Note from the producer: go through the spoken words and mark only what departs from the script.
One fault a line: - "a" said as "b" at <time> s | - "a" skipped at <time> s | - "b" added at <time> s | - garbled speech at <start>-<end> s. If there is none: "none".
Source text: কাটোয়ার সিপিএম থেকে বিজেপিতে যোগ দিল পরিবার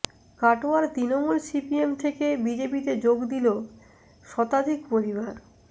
- "তৃণমূল" added at 0.9 s
- "শতাধিক" added at 4.2 s